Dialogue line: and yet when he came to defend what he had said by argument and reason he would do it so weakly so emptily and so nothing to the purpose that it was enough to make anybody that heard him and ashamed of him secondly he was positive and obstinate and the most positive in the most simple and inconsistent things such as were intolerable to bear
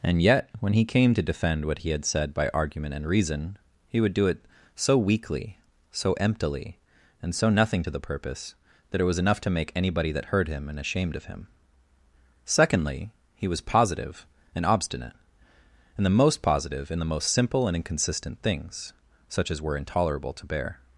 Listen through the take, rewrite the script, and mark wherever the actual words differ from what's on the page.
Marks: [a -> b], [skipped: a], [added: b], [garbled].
and yet when he came to defend what he had said by argument and reason he would do it so weakly so emptily and so nothing to the purpose that it was enough to make anybody that heard him and ashamed of him secondly he was positive and obstinate and the most positive in the most simple and inconsistent things such as were intolerable to bear